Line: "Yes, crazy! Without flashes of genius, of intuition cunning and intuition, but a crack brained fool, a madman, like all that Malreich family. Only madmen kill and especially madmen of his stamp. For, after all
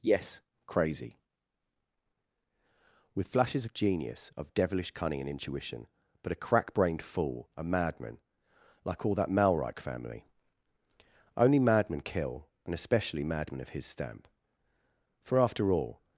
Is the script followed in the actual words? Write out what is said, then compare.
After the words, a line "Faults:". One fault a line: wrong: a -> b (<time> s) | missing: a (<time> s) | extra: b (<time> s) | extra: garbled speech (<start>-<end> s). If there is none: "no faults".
"Yes, crazy! With flashes of genius, of devilish cunning and intuition, but a crack brained fool, a madman, like all that Malreich family. Only madmen kill and especially madmen of his stamp. For, after all
Faults:
wrong: Without -> With (3.1 s)
wrong: intuition -> devilish (4.5 s)